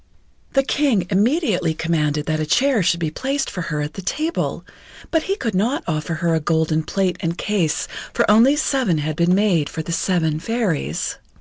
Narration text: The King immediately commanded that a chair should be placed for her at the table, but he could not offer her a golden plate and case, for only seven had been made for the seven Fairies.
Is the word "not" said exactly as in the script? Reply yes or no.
yes